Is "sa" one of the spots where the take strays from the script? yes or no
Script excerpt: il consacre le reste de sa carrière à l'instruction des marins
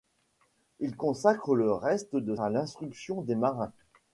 yes